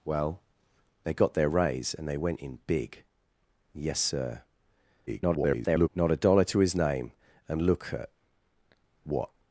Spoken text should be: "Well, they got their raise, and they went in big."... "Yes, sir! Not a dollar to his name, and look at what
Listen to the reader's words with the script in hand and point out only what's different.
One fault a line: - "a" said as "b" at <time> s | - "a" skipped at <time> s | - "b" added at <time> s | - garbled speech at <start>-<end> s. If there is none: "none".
- garbled speech at 5.1-5.9 s